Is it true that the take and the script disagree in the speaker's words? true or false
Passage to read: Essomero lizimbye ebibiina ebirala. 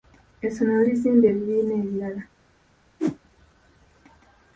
false